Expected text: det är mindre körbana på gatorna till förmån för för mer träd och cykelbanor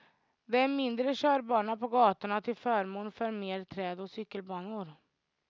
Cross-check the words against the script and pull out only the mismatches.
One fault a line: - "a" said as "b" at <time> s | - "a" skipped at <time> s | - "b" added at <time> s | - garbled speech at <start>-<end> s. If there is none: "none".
- "för" skipped at 3.3 s